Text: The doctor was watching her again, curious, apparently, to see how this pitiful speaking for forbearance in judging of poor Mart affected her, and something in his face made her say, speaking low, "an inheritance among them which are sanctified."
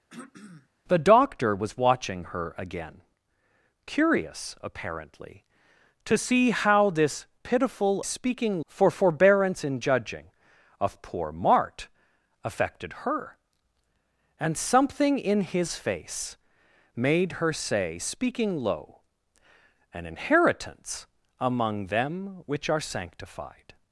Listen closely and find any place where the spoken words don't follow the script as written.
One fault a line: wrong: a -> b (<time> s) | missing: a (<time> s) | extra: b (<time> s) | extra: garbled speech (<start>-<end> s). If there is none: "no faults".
no faults